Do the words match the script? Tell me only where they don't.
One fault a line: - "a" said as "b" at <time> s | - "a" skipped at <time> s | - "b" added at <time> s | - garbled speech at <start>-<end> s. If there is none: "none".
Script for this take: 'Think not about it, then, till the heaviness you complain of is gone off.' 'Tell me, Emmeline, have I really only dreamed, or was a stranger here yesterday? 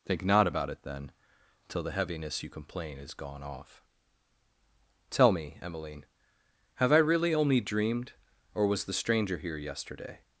- "of" skipped at 3.0 s
- "a" said as "the" at 8.8 s